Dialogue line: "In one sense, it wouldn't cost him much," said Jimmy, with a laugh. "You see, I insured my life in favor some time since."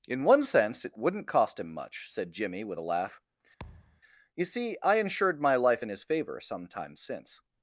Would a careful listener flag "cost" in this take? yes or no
no